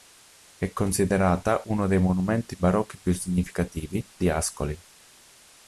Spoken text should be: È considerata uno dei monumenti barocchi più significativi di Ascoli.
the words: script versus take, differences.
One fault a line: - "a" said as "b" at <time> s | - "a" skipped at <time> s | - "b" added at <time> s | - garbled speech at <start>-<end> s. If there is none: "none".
none